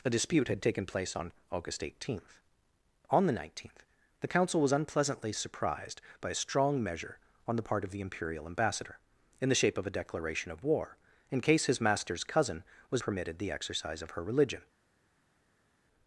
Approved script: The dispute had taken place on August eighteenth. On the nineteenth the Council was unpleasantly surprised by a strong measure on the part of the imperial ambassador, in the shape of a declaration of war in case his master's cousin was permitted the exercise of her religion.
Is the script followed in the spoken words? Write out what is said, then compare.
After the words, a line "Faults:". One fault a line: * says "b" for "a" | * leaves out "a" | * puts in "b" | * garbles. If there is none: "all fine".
The dispute had taken place on August eighteenth. On the nineteenth the Council was unpleasantly surprised by a strong measure on the part of the imperial ambassador, in the shape of a declaration of war in case his master's cousin was permitted the exercise of her religion.
Faults:
all fine